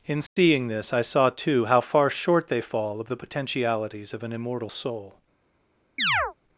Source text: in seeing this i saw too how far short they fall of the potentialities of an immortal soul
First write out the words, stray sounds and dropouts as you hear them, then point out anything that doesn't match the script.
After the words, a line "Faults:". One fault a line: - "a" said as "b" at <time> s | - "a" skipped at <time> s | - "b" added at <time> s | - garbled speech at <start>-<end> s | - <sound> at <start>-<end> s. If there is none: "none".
in seeing this i saw too how far short they fall of the potentialities of an immortal soul
Faults:
- dropout at 0.3-0.4 s
- chirp at 6.0-6.3 s